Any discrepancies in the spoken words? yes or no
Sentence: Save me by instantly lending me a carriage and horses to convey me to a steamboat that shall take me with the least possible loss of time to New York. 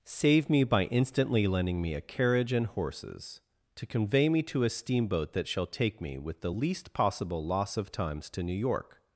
yes